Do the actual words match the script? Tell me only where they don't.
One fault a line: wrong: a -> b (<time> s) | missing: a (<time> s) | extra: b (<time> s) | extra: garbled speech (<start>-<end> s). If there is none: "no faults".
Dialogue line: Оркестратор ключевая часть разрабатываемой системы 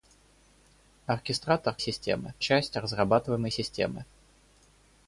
wrong: ключевая -> системы (1.8 s)